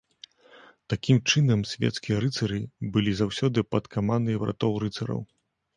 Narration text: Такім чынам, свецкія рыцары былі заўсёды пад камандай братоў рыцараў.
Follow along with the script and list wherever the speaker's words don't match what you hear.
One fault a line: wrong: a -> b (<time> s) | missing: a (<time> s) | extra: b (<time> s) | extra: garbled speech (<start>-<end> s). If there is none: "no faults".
no faults